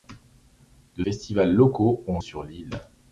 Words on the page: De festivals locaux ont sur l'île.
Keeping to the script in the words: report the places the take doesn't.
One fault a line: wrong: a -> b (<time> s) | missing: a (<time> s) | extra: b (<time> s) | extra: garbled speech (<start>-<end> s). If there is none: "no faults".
no faults